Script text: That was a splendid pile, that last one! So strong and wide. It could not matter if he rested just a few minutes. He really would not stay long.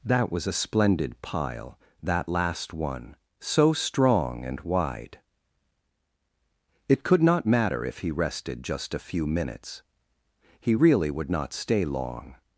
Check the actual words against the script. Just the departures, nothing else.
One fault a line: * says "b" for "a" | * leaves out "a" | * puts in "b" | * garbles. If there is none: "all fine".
all fine